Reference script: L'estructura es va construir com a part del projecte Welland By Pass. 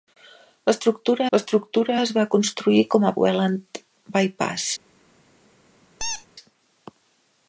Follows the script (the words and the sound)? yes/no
no